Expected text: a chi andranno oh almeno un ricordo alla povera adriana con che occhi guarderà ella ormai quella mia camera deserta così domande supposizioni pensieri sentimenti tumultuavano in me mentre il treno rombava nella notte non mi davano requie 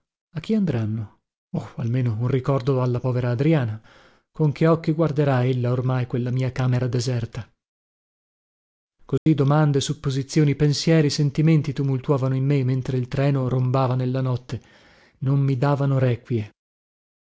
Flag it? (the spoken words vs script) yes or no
no